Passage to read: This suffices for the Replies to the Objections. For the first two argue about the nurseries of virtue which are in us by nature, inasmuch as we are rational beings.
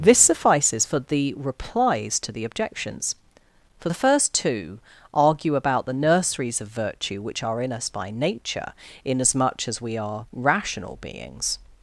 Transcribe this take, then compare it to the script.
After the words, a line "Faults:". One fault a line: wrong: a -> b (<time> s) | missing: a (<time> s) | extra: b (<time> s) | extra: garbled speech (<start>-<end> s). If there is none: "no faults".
This suffices for the Replies to the Objections. For the first two argue about the nurseries of virtue which are in us by nature, inasmuch as we are rational beings.
Faults:
no faults